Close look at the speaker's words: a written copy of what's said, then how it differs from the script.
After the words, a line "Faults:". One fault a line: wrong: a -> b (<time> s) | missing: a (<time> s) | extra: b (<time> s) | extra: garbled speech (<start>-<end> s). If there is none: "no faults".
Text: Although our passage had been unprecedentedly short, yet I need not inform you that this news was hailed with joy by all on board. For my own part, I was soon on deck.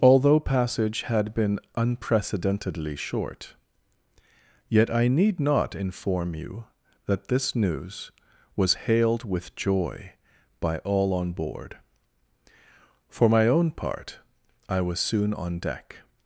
Although passage had been unprecedentedly short, yet I need not inform you that this news was hailed with joy by all on board. For my own part, I was soon on deck.
Faults:
missing: our (0.4 s)